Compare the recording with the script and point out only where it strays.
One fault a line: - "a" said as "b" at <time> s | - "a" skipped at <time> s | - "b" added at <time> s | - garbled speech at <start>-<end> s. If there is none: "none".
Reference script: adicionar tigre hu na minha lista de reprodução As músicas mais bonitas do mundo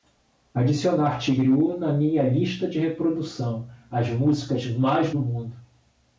- "bonitas" skipped at 5.1 s